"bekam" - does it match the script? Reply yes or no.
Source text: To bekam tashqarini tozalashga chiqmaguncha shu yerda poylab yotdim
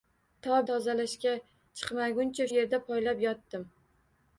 no